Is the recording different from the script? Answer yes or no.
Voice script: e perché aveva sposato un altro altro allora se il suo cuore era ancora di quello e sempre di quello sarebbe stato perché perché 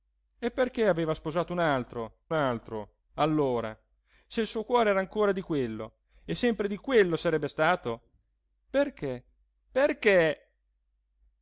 no